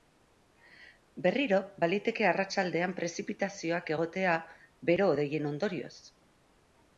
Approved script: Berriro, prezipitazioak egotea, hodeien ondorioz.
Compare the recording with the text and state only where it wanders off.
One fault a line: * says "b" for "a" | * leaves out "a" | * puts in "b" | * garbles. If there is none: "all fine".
* puts in "baliteke arratsaldean"
* puts in "bero"